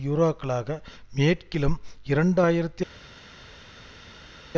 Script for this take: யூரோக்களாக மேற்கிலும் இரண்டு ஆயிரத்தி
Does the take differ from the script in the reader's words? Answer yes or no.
no